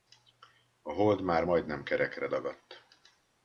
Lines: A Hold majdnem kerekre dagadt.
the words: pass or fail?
fail